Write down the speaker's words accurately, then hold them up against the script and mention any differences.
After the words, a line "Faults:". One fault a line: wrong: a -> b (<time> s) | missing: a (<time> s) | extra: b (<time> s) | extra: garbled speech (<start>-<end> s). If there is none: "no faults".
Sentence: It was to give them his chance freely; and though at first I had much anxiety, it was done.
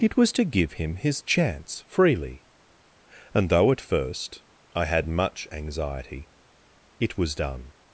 It was to give him his chance freely; and though at first I had much anxiety, it was done.
Faults:
wrong: them -> him (0.7 s)